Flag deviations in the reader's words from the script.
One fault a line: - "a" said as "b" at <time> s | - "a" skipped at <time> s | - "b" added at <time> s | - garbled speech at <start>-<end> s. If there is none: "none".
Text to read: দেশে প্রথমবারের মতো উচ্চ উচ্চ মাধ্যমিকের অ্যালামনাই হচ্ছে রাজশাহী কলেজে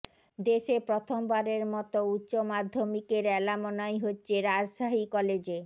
- "উচ্চ" skipped at 2.3 s